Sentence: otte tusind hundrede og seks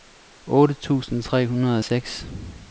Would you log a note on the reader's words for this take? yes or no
yes